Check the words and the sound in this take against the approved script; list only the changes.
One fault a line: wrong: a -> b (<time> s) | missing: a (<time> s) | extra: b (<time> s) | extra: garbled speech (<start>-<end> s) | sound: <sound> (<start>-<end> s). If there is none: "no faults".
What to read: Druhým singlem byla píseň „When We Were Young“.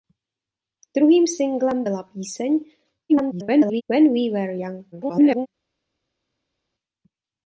extra: garbled speech (3.1-3.8 s)
extra: garbled speech (4.9-5.5 s)